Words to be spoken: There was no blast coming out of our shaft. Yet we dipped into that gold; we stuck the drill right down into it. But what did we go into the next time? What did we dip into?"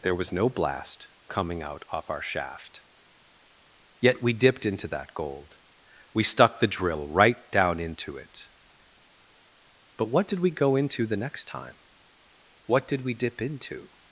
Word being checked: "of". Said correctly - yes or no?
no